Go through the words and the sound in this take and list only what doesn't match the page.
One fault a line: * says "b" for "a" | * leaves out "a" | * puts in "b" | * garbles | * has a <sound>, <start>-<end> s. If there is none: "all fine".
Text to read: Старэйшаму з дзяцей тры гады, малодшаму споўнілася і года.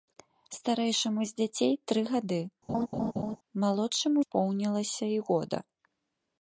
* has a laugh, 2.7-3.4 s